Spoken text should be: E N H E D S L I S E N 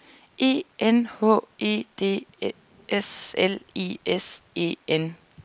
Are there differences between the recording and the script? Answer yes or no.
no